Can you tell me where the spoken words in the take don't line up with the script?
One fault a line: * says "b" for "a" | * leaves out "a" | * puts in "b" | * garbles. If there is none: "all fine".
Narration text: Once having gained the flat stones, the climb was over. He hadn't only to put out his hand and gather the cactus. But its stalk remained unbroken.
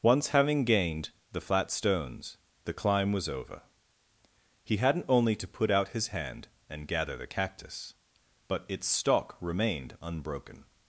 all fine